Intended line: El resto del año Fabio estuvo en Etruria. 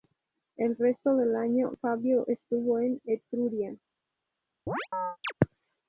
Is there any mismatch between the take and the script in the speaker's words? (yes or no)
no